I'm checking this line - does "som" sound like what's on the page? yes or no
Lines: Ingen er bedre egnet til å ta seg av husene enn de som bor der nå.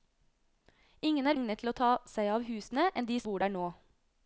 no